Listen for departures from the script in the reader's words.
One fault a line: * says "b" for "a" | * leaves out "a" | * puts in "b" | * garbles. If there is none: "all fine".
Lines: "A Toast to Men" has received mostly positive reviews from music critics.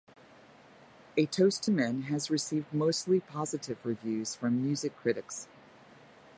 all fine